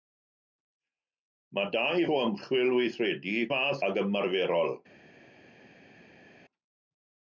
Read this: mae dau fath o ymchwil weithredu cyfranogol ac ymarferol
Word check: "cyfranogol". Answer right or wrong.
wrong